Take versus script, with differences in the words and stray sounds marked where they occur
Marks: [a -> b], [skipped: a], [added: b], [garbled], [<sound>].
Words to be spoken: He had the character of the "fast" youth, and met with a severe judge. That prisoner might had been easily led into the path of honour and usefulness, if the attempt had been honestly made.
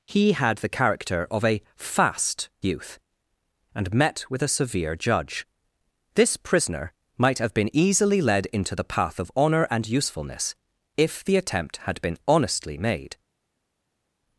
He had the character of [the -> a] "fast" youth, and met with a severe judge. [That -> This] prisoner might [had -> have] been easily led into the path of honour and usefulness, if the attempt had been honestly made.